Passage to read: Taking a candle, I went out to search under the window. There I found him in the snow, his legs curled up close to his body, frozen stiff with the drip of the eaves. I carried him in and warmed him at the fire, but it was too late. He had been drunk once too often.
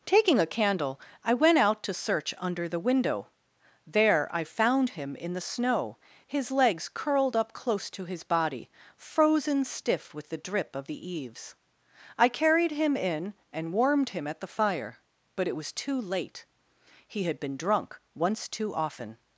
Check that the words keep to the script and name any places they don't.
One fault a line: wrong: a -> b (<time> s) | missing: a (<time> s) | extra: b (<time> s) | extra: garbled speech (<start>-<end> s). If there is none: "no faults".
no faults